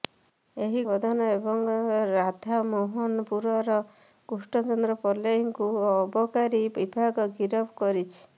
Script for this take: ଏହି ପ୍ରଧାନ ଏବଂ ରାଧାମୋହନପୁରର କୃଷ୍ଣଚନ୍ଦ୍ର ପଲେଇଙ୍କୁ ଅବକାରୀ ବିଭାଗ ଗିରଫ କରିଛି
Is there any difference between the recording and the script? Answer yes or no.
no